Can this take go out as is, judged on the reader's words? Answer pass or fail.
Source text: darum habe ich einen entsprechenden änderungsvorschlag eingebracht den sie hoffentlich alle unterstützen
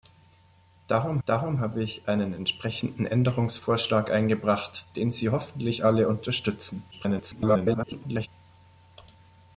fail